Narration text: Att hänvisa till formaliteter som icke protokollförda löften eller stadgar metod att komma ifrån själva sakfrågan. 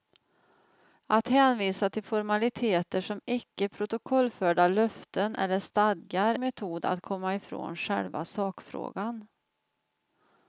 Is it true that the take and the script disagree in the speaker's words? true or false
false